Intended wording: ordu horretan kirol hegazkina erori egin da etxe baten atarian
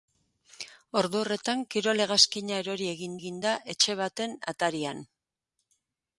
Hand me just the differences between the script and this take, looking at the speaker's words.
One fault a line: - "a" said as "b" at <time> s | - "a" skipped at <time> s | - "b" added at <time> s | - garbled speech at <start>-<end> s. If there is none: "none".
- "egin" added at 3.2 s